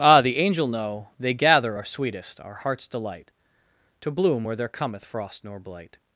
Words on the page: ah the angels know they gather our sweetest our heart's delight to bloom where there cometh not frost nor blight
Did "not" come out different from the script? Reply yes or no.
yes